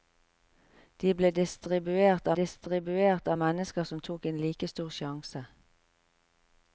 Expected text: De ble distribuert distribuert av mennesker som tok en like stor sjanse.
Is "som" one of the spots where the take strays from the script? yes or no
no